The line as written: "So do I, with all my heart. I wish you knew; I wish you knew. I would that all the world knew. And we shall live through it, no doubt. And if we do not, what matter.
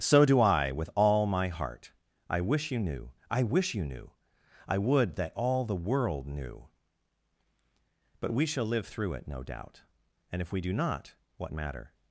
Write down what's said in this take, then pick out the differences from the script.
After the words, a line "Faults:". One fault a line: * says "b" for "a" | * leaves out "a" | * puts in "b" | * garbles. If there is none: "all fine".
"So do I, with all my heart. I wish you knew; I wish you knew. I would that all the world knew. But we shall live through it, no doubt. And if we do not, what matter.
Faults:
* says "But" for "And"